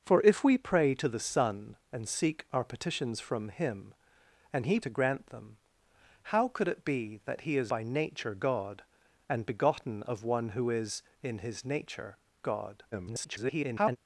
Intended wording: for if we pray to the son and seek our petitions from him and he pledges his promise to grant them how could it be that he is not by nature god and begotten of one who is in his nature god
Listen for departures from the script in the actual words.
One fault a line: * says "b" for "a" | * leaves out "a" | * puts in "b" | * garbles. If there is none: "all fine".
* leaves out "pledges his promise"
* leaves out "not"
* garbles